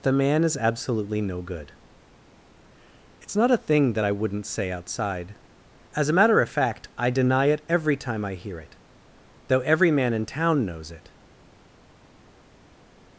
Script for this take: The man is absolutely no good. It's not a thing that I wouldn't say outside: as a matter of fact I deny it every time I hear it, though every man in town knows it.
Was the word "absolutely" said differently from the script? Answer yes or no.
no